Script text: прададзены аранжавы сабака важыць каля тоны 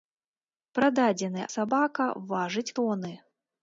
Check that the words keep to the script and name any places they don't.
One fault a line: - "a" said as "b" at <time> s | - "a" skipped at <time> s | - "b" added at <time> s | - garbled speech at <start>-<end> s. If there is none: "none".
- "аранжавы" skipped at 1.4 s
- "каля" skipped at 2.7 s